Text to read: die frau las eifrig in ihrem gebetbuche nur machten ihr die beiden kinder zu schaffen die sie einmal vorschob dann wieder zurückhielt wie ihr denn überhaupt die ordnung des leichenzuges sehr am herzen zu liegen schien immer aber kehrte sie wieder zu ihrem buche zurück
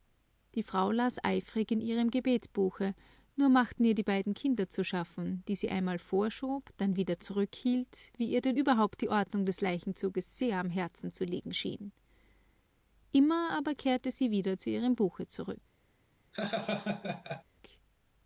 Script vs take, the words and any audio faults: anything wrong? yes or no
yes